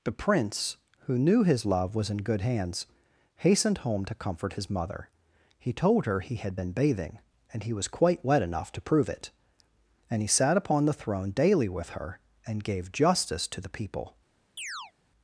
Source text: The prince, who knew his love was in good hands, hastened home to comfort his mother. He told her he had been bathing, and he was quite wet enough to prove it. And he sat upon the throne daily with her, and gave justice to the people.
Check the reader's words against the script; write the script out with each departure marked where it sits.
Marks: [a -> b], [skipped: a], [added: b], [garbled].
The prince, who knew his love was in good hands, hastened home to comfort his mother. He told her he had been bathing, and he was quite wet enough to prove it. And he sat upon the throne daily with her, and gave justice to the people.